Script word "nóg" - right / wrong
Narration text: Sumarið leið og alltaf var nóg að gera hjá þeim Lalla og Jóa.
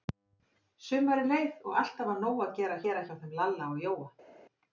right